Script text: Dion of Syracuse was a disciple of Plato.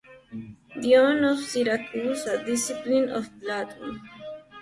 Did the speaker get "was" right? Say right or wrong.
wrong